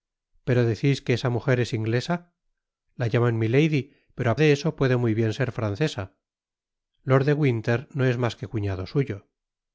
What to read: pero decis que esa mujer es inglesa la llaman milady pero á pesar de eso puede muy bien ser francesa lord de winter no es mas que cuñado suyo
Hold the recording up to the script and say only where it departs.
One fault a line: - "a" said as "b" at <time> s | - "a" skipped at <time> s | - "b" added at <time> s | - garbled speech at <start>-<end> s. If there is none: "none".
- "pesar" skipped at 4.3 s